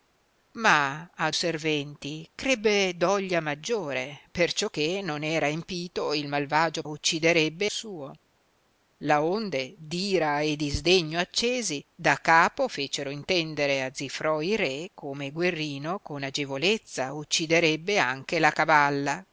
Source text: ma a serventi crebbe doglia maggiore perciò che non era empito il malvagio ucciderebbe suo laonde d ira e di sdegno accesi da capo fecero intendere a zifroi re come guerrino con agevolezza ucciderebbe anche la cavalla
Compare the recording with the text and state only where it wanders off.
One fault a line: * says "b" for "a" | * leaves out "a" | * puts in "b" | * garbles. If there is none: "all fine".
all fine